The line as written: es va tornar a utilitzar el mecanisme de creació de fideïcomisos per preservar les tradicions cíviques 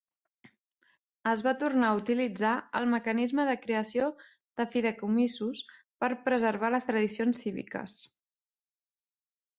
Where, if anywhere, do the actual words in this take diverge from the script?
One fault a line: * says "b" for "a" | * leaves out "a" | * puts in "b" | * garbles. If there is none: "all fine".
all fine